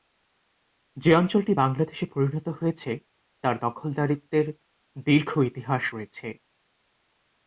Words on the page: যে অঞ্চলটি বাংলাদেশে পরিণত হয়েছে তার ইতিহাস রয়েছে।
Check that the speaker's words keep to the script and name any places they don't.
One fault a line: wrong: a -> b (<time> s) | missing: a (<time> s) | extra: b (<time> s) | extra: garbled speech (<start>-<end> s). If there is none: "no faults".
extra: দখলদারিত্বের দীর্ঘ (3.6 s)